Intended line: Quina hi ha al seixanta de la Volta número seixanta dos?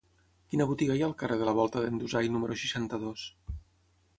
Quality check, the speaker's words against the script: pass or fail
fail